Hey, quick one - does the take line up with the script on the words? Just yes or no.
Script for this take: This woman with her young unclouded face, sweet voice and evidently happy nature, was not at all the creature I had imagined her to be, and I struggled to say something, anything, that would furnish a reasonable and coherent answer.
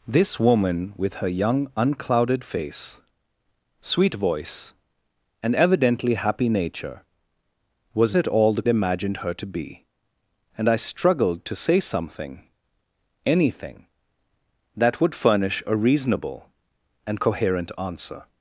no